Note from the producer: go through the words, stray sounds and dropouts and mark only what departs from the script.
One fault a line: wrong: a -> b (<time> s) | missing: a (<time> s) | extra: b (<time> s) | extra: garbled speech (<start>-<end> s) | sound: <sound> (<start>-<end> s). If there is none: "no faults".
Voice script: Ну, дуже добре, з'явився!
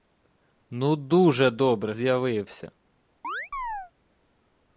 sound: chirp (3.2-3.9 s)